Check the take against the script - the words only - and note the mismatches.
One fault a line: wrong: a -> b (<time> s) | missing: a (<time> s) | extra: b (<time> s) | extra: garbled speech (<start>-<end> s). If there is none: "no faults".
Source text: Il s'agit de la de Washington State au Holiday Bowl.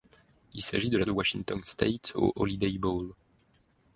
no faults